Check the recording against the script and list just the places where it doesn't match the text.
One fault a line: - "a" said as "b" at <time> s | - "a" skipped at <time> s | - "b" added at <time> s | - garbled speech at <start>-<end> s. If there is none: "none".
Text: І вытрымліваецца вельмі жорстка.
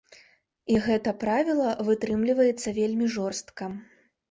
- "гэта правіла" added at 0.8 s